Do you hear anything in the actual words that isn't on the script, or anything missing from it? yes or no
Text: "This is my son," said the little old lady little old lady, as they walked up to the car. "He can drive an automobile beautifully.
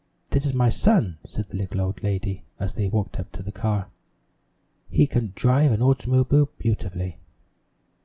yes